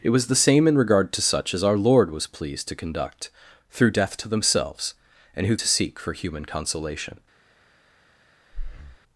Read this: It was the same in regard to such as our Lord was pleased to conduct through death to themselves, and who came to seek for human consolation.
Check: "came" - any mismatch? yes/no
yes